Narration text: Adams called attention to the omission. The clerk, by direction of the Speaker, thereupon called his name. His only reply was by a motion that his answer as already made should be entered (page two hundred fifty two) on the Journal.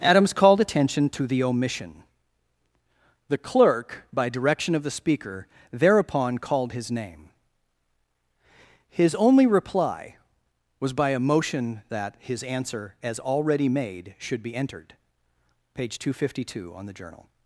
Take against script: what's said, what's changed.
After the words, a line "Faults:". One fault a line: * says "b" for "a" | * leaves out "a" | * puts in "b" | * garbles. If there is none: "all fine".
Adams called attention to the omission. The clerk, by direction of the Speaker, thereupon called his name. His only reply was by a motion that his answer as already made should be entered (page two hundred fifty two) on the Journal.
Faults:
all fine